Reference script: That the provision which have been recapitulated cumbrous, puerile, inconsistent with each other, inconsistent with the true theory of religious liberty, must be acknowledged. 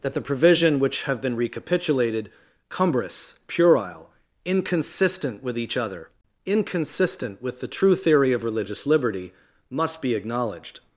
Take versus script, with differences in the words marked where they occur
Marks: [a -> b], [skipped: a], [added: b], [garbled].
That the provision which have been recapitulated cumbrous, puerile, inconsistent with each other, inconsistent with the true theory of religious liberty, must be acknowledged.